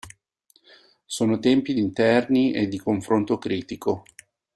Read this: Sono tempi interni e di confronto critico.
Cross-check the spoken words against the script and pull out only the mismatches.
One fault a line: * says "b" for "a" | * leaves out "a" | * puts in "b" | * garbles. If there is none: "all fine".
all fine